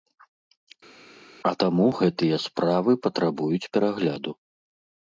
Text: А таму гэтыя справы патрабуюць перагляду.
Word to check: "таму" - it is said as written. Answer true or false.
true